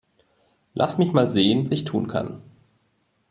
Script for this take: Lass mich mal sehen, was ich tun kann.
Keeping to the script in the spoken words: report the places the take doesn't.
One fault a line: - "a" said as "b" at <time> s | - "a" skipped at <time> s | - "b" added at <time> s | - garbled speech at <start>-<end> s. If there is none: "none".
- "was" skipped at 1.7 s